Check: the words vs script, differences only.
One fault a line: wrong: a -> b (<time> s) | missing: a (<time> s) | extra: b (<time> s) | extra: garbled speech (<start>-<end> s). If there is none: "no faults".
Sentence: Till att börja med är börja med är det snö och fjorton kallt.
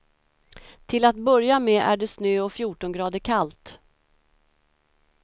missing: börja med är (2.0 s)
extra: grader (2.9 s)